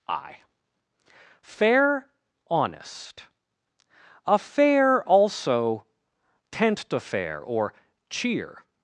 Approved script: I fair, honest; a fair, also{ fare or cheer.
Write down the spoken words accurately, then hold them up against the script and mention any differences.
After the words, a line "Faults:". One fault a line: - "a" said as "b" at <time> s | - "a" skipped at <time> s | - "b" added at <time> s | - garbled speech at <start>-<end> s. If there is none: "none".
I fair, honest; a fair, also{ tent to fair or cheer.
Faults:
- "fare" said as "tent to fair" at 6.5 s